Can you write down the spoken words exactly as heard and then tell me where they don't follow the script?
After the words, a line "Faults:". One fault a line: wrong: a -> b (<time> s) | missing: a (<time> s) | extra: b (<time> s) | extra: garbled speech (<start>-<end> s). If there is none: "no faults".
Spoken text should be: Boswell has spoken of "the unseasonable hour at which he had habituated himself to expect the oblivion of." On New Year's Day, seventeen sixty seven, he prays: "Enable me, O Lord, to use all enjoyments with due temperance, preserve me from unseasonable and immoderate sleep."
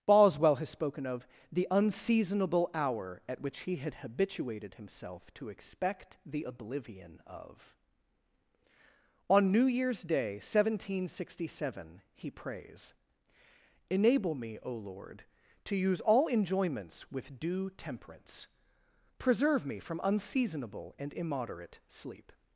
Boswell has spoken of "the unseasonable hour at which he had habituated himself to expect the oblivion of." On New Year's Day, seventeen sixty seven, he prays: "Enable me, O Lord, to use all enjoyments with due temperance, preserve me from unseasonable and immoderate sleep."
Faults:
no faults